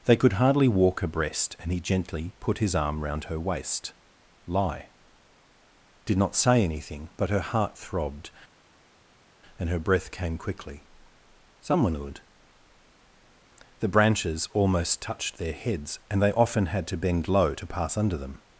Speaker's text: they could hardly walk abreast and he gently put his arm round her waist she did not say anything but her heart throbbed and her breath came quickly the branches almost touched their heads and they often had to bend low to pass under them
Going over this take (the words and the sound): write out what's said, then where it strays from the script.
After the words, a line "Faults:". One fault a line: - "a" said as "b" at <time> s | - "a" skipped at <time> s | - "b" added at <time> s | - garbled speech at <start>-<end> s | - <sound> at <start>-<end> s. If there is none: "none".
they could hardly walk abreast and he gently put his arm round her waist lie did not say anything but her heart throbbed and her breath came quickly someone would the branches almost touched their heads and they often had to bend low to pass under them
Faults:
- "she" said as "lie" at 4.5 s
- "someone would" added at 11.6 s